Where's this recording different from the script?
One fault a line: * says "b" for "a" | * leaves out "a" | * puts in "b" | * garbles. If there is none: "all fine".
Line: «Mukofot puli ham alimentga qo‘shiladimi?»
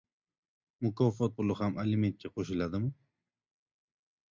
all fine